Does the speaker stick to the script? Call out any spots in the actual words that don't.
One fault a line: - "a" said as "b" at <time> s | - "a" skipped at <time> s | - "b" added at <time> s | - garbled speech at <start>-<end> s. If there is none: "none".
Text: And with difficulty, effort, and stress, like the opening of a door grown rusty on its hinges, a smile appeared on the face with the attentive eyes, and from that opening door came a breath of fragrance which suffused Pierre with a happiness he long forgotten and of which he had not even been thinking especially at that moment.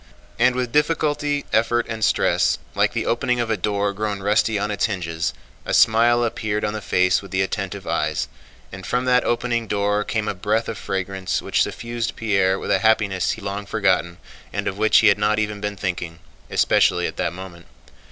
none